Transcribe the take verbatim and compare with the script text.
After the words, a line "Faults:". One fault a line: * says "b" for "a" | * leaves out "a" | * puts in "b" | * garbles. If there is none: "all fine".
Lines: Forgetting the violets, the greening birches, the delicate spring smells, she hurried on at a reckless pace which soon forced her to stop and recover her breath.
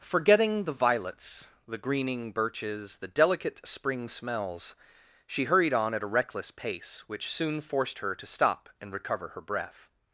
Forgetting the violets, the greening birches, the delicate spring smells, she hurried on at a reckless pace which soon forced her to stop and recover her breath.
Faults:
all fine